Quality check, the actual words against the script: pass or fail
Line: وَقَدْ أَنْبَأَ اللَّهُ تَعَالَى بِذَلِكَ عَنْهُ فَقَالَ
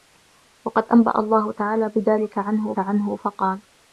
fail